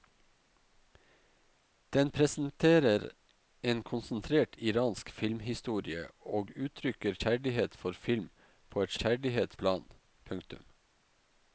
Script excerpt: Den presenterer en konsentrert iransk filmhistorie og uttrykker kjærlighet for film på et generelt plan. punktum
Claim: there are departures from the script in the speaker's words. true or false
true